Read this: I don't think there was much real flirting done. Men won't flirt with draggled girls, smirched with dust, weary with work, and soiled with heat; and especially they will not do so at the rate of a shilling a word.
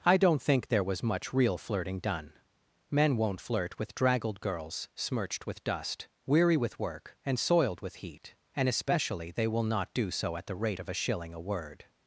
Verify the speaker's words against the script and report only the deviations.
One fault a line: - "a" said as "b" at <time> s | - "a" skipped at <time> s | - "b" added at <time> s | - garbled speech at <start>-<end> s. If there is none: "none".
none